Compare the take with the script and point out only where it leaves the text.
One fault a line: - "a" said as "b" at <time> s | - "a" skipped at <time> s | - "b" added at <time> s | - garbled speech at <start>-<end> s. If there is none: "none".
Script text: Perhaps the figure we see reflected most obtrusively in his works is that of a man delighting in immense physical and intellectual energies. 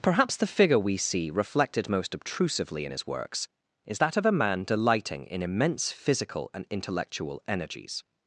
none